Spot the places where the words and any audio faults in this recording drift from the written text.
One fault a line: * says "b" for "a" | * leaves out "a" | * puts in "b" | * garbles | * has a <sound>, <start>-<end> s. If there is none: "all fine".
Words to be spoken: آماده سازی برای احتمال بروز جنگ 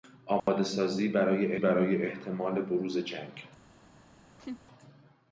* has a dropout, 0.4-0.5 s
* puts in "برای"
* has a laugh, 4.4-4.6 s